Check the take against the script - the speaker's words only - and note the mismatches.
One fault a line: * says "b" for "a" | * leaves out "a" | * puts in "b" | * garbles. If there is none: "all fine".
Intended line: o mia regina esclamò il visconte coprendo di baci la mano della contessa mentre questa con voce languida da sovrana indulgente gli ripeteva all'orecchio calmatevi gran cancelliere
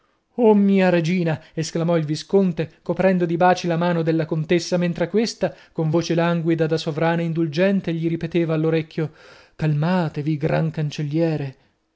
all fine